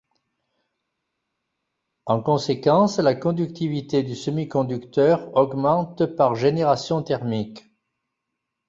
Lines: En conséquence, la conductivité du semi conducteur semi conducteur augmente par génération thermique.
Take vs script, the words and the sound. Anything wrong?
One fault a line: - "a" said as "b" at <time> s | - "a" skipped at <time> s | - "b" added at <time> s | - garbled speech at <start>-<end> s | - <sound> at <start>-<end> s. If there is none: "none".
- "semi conducteur" skipped at 5.4 s